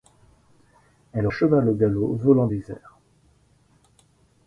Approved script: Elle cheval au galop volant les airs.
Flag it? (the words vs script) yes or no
no